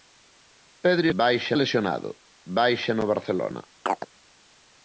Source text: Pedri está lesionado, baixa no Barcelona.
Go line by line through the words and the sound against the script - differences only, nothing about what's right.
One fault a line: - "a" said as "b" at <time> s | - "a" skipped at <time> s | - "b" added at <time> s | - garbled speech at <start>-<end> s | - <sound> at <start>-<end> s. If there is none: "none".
- "está" said as "baixa" at 1.2 s
- chirp at 3.9-4.1 s